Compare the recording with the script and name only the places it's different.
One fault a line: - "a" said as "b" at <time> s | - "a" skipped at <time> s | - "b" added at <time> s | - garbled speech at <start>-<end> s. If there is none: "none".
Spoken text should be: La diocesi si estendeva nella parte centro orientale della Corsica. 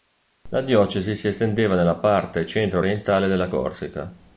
none